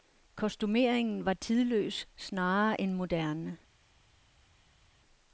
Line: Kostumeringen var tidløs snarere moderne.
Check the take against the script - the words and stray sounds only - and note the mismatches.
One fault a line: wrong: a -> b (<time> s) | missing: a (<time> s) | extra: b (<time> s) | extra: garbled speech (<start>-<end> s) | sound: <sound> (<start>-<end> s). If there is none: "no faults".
extra: end (2.8 s)